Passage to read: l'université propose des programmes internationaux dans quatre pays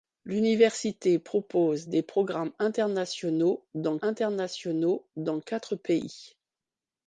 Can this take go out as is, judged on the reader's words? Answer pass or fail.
fail